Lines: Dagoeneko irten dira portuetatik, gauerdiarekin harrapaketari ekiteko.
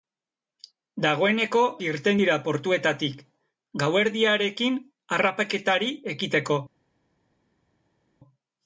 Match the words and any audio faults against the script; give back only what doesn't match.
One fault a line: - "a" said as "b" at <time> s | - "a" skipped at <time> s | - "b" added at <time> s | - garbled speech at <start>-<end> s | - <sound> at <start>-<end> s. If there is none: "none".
none